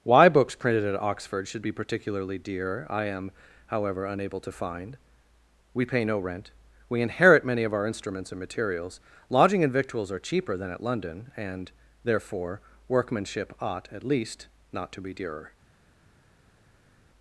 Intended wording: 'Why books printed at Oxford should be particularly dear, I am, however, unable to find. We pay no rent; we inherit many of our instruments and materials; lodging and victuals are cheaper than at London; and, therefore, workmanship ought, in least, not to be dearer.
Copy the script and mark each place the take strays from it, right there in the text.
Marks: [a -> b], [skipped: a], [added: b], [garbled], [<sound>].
'Why books printed at Oxford should be particularly dear, I am, however, unable to find. We pay no rent; we inherit many of our instruments and materials; lodging and victuals are cheaper than at London; and, therefore, workmanship ought, [in -> at] least, not to be dearer.